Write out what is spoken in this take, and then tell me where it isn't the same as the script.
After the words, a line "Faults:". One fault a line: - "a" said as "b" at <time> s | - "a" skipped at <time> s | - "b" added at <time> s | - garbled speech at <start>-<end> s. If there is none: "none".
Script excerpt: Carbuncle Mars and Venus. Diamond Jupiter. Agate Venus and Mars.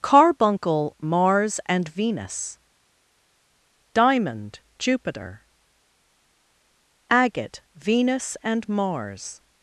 Carbuncle Mars and Venus. Diamond Jupiter. Agate Venus and Mars.
Faults:
none